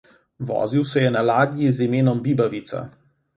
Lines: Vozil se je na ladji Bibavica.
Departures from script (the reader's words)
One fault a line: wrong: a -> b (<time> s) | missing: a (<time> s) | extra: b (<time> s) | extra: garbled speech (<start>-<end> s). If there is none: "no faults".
extra: z imenom (1.7 s)